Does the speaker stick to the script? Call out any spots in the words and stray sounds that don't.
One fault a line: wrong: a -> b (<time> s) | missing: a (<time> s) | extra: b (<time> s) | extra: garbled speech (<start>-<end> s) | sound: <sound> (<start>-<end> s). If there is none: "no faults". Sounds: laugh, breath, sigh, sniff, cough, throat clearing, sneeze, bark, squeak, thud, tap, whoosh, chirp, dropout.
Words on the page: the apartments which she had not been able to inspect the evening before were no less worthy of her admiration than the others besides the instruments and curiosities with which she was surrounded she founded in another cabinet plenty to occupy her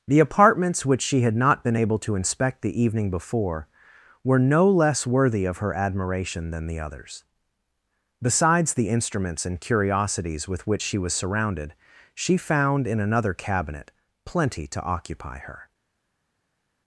wrong: founded -> found (12.4 s)